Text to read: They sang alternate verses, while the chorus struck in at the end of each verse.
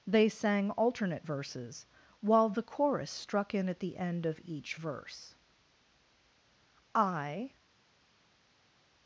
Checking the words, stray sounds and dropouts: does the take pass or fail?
fail